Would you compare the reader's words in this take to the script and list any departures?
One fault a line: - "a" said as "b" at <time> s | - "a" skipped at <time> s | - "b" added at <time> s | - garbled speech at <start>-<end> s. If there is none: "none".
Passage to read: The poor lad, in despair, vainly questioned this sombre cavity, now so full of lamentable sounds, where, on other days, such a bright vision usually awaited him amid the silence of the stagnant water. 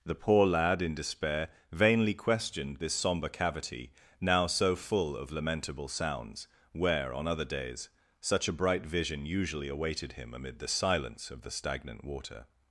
none